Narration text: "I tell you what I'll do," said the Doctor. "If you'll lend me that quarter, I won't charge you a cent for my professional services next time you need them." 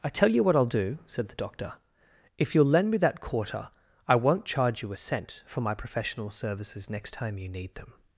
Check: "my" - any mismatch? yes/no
no